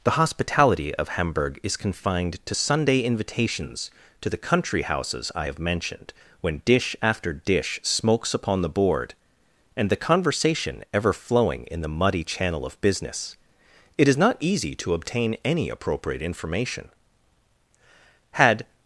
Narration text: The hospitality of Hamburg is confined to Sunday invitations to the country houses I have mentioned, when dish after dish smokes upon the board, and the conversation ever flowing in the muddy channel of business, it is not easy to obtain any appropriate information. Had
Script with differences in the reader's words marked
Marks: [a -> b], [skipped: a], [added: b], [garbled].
The hospitality of Hamburg is confined to Sunday invitations to the country houses I have mentioned, when dish after dish smokes upon the board, and the conversation ever flowing in the muddy channel of business, it is not easy to obtain any appropriate information. Had